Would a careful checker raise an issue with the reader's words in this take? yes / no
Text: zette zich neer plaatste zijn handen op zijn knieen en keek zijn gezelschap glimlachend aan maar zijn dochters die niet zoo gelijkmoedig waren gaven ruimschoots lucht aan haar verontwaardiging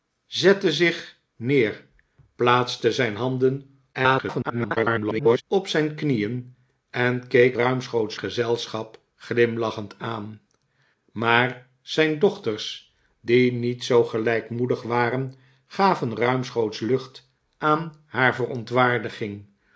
yes